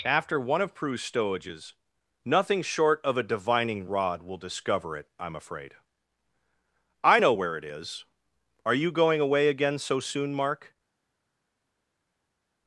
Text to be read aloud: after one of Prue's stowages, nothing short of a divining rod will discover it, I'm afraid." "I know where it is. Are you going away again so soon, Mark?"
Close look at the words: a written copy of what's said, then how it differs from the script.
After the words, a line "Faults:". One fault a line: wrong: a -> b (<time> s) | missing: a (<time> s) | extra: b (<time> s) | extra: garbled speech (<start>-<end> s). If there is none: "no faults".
after one of Prue's stowages, nothing short of a divining rod will discover it, I'm afraid." "I know where it is. Are you going away again so soon, Mark?"
Faults:
no faults